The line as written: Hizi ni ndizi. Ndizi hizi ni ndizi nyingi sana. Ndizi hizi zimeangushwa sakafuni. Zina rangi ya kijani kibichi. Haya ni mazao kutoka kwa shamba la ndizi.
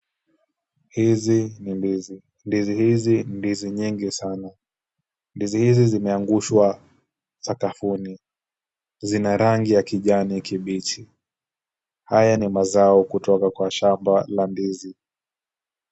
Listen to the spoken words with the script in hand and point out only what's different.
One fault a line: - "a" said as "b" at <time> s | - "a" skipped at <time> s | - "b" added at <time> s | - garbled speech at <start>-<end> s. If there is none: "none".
none